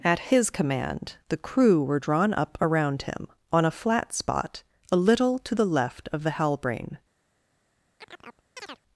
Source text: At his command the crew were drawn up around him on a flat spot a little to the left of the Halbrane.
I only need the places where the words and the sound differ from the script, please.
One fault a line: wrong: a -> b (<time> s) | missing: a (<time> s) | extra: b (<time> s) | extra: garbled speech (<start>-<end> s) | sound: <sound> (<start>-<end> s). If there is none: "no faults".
sound: chirp (8.0-8.8 s)